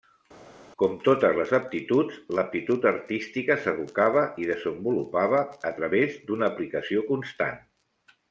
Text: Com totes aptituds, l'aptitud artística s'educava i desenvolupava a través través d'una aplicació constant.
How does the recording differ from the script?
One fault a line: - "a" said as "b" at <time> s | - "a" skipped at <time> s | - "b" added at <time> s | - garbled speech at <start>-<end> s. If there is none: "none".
- "les" added at 1.4 s
- "través" skipped at 6.2 s